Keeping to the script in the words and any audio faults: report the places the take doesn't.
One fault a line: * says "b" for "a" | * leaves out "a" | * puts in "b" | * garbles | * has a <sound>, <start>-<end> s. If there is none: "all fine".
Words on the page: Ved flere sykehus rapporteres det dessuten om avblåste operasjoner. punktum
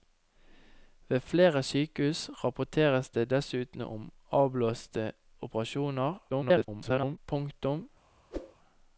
* garbles
* has a whoosh, 8.3-8.6 s